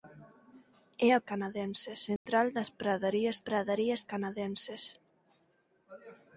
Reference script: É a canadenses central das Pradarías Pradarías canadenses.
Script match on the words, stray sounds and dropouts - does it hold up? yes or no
no